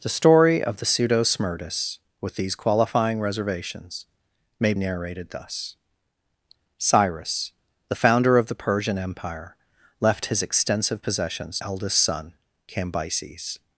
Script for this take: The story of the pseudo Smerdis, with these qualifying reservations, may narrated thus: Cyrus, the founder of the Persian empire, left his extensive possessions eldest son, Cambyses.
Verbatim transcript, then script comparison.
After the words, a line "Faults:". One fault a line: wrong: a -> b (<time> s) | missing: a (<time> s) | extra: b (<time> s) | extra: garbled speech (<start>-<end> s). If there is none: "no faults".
The story of the pseudo Smerdis, with these qualifying reservations, may narrated thus: Cyrus, the founder of the Persian empire, left his extensive possessions eldest son, Cambyses.
Faults:
no faults